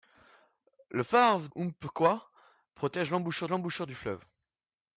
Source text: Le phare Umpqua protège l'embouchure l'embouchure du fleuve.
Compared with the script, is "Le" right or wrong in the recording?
right